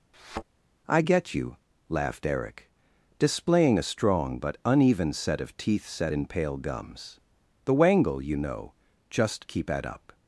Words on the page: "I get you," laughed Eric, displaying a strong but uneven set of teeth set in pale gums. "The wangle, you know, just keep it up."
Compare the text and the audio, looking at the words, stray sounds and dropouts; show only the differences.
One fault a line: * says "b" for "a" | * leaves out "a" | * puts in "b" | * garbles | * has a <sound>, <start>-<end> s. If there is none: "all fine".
* has a thud, 0.1-0.4 s
* says "at" for "it"